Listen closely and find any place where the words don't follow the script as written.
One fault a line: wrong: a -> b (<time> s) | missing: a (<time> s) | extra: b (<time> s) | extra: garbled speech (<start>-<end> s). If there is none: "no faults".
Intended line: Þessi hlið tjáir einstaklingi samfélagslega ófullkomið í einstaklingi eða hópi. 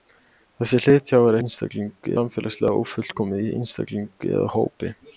no faults